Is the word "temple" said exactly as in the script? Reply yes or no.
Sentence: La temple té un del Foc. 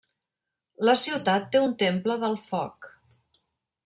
no